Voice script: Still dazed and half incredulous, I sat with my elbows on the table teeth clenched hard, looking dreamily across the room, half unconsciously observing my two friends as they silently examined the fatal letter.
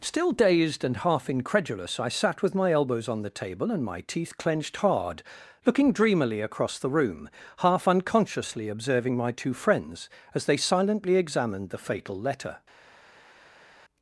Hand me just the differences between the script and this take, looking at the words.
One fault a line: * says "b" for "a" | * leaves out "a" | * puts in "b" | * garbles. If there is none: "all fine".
* puts in "and my"